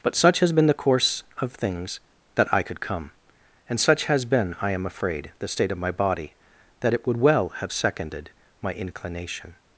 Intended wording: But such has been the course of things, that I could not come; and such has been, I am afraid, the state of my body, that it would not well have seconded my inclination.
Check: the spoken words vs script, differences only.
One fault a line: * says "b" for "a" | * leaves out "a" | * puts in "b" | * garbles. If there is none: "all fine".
* leaves out "not"
* leaves out "not"